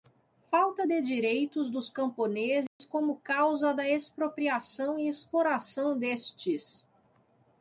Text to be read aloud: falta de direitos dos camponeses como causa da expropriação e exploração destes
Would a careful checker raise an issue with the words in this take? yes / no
no